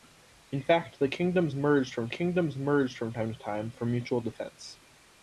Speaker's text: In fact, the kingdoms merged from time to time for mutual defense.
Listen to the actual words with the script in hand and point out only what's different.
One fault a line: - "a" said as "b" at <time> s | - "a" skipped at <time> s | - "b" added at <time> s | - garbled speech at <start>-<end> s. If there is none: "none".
- "kingdoms merged from" added at 2.1 s